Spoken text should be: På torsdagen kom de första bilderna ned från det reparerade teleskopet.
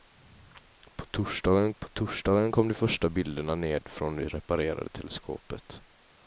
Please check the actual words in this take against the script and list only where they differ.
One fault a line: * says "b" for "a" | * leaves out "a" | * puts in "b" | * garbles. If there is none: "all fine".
* puts in "på torsdagen"